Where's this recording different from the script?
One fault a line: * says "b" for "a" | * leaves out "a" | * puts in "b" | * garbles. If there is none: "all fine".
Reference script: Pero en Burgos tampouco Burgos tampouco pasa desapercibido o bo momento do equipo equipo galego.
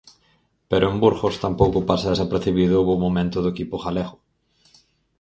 * leaves out "Burgos tampouco"
* leaves out "equipo"